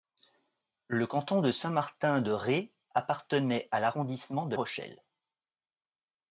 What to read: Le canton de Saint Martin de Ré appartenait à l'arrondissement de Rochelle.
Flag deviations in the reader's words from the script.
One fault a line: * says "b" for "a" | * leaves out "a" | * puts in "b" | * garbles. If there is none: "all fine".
all fine